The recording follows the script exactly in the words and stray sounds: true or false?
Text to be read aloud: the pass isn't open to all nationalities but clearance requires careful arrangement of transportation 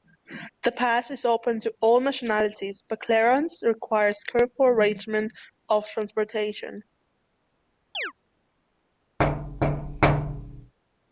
false